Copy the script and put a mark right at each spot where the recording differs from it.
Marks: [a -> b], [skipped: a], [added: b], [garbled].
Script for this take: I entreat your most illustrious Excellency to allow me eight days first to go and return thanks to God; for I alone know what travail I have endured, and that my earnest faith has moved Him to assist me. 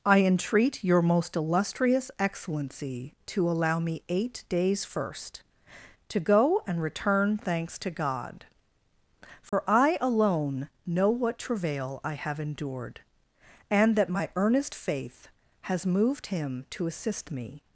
I entreat your most illustrious Excellency to allow me eight days first to go and return thanks to God; for I alone know what travail I have endured, and that my earnest faith has moved Him to assist me.